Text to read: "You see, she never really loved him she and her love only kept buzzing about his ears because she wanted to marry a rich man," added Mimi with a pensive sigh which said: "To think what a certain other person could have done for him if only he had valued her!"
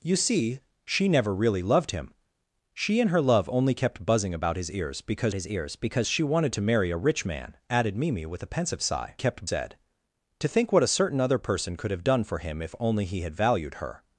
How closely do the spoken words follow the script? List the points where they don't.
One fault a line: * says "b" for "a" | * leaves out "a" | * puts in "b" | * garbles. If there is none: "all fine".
* puts in "his ears because"
* says "kept" for "which"